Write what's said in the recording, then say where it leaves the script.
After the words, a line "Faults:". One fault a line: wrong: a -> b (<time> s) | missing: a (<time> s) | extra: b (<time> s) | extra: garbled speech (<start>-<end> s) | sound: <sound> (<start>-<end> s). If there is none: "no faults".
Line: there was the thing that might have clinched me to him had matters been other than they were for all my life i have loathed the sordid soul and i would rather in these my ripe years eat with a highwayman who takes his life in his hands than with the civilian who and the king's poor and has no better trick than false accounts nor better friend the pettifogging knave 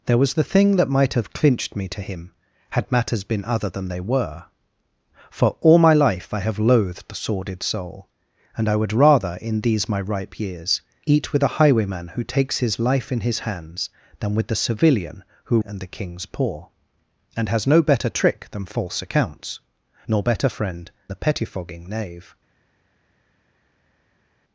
there was the thing that might have clinched me to him had matters been other than they were for all my life i have loathed the sordid soul and i would rather in these my ripe years eat with a highwayman who takes his life in his hands than with the civilian who and the king's poor and has no better trick than false accounts nor better friend the pettifogging knave
Faults:
no faults